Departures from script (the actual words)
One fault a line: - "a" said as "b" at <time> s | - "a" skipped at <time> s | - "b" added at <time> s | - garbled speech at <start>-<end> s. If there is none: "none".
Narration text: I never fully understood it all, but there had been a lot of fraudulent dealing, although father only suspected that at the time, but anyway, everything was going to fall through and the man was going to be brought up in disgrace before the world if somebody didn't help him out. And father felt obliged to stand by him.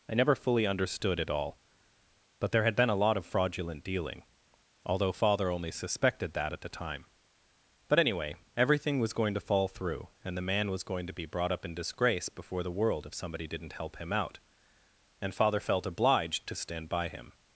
none